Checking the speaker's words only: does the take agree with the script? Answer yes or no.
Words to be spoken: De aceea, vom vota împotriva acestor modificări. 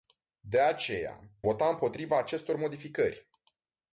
no